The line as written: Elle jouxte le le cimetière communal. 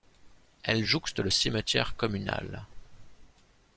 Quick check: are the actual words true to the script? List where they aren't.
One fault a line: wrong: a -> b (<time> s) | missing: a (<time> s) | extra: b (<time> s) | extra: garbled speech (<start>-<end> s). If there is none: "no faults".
missing: le (1.3 s)